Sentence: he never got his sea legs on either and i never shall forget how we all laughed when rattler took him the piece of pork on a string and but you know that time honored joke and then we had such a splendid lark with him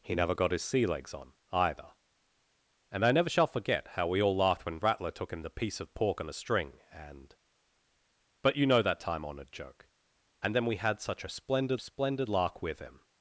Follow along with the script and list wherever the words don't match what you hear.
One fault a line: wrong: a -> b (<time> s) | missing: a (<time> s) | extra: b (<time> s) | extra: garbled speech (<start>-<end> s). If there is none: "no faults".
extra: splendid (11.8 s)